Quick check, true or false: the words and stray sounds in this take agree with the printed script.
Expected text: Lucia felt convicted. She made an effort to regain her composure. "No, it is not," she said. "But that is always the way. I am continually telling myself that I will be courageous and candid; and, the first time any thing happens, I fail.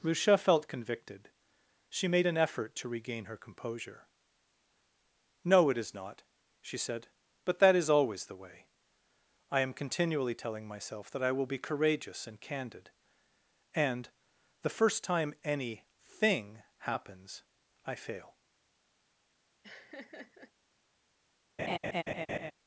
false